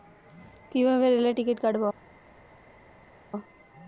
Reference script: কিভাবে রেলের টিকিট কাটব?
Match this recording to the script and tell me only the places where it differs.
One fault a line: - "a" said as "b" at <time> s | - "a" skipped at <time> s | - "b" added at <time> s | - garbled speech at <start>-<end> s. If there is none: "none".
none